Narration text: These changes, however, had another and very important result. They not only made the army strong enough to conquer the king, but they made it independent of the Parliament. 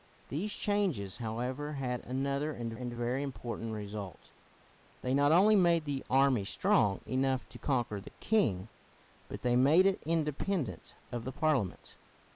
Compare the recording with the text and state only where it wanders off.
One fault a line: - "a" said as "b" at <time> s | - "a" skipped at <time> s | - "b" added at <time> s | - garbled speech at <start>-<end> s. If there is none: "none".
- "and" added at 2.7 s